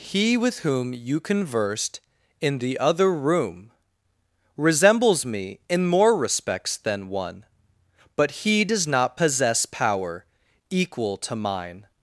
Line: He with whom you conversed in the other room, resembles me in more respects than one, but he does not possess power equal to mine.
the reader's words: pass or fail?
pass